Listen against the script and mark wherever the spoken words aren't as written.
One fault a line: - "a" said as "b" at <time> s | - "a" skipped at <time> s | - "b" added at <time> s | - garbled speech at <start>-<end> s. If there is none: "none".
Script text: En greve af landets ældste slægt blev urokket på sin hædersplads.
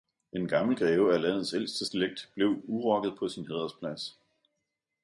- "gammel" added at 0.5 s